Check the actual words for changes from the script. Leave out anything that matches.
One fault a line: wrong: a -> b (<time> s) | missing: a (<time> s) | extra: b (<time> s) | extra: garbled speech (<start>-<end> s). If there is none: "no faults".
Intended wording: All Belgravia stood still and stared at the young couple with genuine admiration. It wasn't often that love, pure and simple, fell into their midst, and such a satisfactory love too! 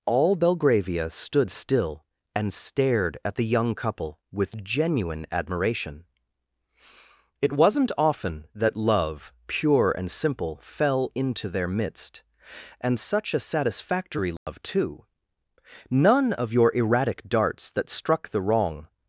extra: None of your erratic darts that struck the wrong (15.9 s)